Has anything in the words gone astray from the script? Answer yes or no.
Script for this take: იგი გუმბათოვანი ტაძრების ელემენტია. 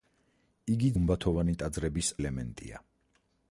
no